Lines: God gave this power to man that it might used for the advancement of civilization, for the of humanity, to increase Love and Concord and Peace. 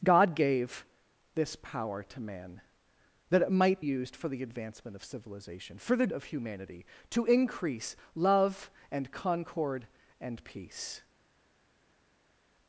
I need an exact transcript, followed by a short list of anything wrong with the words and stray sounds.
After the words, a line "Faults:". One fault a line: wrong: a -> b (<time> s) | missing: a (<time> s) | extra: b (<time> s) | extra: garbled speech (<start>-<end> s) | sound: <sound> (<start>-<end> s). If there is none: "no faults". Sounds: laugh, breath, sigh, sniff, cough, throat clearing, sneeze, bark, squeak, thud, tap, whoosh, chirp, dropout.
God gave this power to man that it might used for the advancement of civilization, for the of humanity, to increase Love and Concord and Peace.
Faults:
no faults